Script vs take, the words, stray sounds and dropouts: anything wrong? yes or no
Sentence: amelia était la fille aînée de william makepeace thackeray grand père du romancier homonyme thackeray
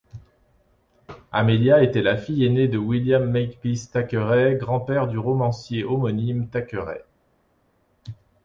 no